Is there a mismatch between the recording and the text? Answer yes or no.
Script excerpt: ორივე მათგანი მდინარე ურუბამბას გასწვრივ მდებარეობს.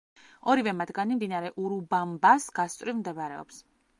no